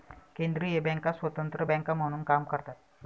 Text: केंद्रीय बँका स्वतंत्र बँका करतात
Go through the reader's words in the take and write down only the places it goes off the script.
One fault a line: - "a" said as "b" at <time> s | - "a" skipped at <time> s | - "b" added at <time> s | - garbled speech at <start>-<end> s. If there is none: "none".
- "म्हणून काम" added at 1.9 s